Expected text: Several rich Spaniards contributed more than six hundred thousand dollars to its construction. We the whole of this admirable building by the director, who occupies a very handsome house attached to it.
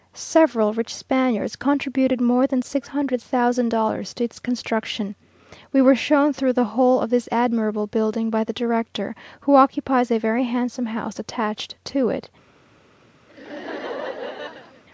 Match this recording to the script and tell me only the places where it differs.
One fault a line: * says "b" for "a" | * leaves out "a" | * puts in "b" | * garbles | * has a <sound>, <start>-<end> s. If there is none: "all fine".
* puts in "were shown through"
* has a laugh, 13.3-14.8 s